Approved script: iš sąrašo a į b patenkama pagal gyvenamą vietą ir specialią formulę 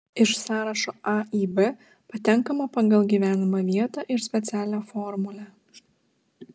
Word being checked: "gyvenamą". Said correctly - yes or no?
yes